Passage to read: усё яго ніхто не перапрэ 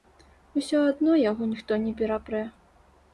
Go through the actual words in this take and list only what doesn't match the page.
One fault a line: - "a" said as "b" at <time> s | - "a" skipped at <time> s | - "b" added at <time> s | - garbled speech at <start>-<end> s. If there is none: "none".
- "адно" added at 0.9 s